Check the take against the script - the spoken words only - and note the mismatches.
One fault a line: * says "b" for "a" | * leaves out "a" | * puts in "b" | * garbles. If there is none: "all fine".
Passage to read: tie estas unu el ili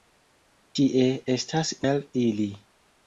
* leaves out "unu"